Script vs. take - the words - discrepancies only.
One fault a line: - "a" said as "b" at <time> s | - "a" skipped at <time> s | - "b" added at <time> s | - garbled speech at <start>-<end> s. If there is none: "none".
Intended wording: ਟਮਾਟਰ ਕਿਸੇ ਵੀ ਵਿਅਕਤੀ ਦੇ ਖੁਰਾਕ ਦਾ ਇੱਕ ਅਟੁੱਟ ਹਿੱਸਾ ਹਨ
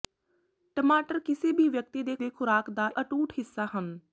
- "ਦੇ" added at 2.2 s
- "ਇੱਕ" skipped at 2.9 s